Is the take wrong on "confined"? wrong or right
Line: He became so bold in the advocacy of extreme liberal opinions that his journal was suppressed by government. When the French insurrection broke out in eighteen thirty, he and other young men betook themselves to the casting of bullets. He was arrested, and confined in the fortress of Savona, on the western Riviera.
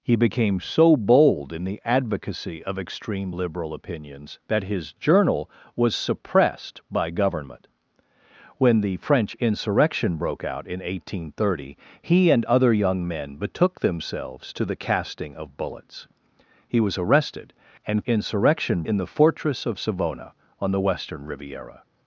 wrong